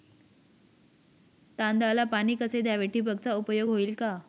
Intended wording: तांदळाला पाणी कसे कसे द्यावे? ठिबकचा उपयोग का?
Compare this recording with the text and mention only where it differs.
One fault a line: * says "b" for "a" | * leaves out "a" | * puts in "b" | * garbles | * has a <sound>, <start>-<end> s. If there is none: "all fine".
* leaves out "कसे"
* puts in "होईल"